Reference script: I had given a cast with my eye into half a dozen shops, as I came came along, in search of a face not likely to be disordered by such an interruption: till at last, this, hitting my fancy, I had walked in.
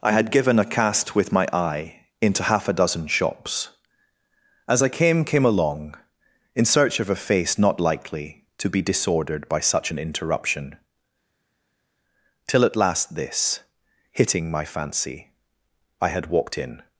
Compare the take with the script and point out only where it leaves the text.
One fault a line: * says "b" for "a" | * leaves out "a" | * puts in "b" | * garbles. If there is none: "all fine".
all fine